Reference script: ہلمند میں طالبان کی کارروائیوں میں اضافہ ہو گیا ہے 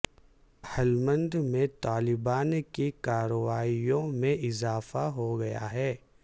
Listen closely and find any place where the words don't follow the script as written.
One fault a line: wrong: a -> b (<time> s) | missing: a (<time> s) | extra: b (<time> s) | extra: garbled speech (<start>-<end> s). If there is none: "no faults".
no faults